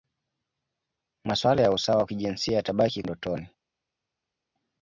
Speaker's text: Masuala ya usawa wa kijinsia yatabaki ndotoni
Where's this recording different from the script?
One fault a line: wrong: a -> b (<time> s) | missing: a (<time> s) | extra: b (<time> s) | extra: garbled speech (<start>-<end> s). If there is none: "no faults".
no faults